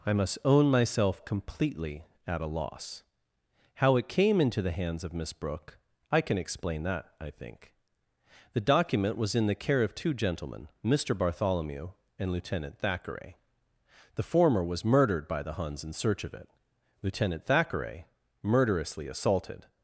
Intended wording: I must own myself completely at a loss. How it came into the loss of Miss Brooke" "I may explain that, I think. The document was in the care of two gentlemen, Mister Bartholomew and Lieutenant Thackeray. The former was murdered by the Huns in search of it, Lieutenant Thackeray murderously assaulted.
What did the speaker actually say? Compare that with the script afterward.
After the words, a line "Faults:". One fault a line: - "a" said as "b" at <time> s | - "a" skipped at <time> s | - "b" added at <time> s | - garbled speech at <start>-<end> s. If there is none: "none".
I must own myself completely at a loss. How it came into the hands of Miss Brooke" "I can explain that, I think. The document was in the care of two gentlemen, Mister Bartholomew and Lieutenant Thackeray. The former was murdered by the Huns in search of it, Lieutenant Thackeray murderously assaulted.
Faults:
- "loss" said as "hands" at 4.7 s
- "may" said as "can" at 6.2 s